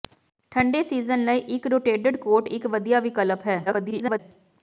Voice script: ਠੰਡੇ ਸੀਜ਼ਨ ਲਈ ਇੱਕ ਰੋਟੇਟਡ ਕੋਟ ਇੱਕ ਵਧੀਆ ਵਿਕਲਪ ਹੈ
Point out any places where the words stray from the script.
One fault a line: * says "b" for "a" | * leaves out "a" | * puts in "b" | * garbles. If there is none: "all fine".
* garbles